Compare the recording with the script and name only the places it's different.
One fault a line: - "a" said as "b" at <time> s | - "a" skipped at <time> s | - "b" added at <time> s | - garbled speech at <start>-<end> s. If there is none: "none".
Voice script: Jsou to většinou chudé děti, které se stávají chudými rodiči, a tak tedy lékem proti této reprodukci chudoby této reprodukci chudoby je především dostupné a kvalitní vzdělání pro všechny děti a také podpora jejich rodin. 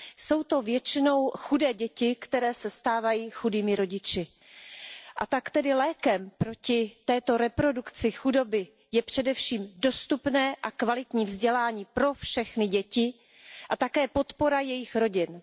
- "této reprodukci chudoby" skipped at 8.7 s